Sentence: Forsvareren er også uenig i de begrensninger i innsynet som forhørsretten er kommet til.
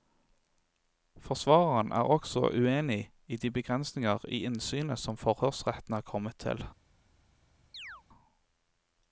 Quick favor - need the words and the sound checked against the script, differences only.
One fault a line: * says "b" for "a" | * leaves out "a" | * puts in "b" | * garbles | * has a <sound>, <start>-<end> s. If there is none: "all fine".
* has a chirp, 7.7-8.0 s